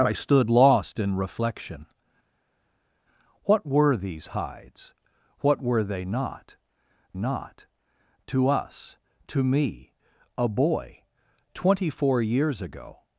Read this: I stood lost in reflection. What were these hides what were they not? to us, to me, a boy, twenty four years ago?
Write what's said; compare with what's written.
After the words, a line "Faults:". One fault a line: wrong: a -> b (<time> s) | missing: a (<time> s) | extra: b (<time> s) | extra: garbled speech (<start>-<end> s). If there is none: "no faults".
I stood lost in reflection. What were these hides what were they not not? to us, to me, a boy, twenty four years ago?
Faults:
extra: not (7.1 s)